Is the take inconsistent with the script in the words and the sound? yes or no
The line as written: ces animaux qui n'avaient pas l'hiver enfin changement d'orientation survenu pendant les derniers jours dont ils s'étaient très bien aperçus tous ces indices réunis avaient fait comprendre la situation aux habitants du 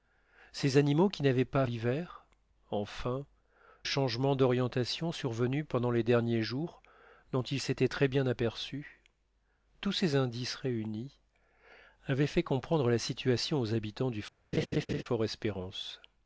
yes